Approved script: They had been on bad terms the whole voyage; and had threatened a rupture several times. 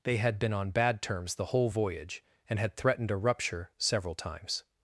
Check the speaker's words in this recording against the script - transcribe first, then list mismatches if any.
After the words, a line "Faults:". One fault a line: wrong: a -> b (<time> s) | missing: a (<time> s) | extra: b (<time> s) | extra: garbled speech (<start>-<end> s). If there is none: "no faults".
They had been on bad terms the whole voyage; and had threatened a rupture several times.
Faults:
no faults